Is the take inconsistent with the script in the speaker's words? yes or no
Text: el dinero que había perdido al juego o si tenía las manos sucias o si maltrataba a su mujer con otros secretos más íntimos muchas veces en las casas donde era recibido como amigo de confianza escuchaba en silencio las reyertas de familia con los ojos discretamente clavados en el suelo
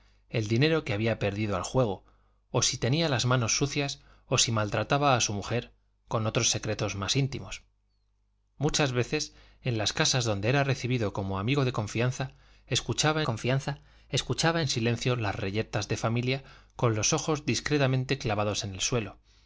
yes